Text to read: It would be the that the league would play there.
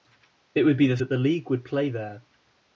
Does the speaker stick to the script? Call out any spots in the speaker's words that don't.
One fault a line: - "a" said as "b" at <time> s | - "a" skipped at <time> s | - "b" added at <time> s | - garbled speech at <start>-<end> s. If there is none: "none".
none